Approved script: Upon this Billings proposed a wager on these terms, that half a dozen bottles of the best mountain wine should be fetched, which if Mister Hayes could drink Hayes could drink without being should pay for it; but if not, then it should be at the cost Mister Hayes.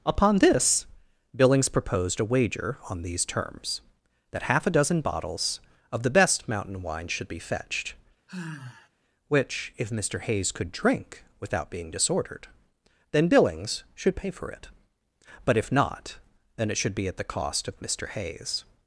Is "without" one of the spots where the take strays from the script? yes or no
yes